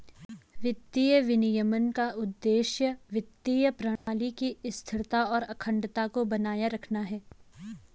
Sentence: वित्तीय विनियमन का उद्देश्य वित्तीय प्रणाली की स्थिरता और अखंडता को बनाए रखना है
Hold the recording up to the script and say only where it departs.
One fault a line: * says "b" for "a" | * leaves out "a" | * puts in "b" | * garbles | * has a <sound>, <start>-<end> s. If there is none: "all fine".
* has a dropout, 4.0-4.1 s